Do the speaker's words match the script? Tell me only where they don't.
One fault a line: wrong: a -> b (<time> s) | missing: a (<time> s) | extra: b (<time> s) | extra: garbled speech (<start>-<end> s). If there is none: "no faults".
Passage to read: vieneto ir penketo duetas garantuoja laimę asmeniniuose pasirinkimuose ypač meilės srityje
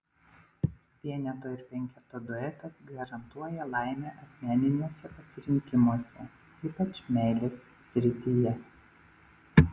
no faults